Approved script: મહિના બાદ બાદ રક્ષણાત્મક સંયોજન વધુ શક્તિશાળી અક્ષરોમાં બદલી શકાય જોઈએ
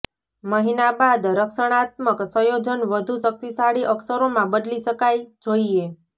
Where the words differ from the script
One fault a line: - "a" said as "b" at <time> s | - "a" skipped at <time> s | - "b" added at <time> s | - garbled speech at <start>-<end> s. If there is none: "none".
- "બાદ" skipped at 1.3 s